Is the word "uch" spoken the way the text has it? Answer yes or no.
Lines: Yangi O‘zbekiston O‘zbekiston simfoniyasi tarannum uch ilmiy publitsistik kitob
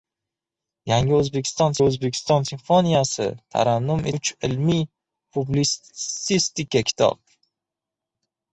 yes